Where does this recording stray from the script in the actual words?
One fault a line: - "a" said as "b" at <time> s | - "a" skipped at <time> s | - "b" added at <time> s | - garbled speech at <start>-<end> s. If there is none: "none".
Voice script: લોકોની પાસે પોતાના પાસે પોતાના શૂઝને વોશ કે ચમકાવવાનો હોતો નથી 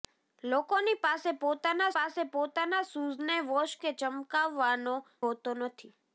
none